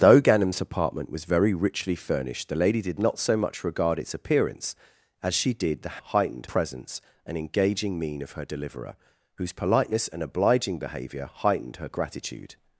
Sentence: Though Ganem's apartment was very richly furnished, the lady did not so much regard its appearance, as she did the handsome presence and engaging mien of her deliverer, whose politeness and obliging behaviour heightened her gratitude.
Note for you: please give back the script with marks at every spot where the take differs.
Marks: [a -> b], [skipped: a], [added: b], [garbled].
Though Ganem's apartment was very richly furnished, the lady did not so much regard its appearance, as she did the [handsome -> heightened] presence and engaging mien of her deliverer, whose politeness and obliging behaviour heightened her gratitude.